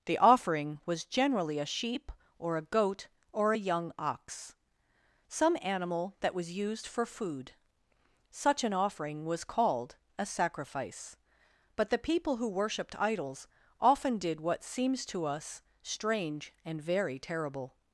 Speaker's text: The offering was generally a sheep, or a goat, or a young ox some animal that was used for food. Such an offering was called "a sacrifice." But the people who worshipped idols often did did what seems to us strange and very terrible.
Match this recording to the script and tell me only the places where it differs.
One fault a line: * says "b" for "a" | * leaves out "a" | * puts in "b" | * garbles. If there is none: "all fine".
* leaves out "did"